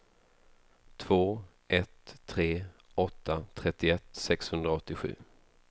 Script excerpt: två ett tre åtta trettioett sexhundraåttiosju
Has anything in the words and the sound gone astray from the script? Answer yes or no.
no